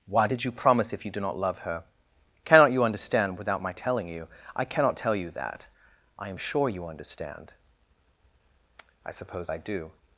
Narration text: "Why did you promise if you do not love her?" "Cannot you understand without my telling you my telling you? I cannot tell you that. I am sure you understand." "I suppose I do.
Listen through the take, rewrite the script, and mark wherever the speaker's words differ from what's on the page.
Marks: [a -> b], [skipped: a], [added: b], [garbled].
"Why did you promise if you do not love her?" "Cannot you understand without my telling you [skipped: my telling you?] I cannot tell you that. I am sure you understand." "I suppose I do.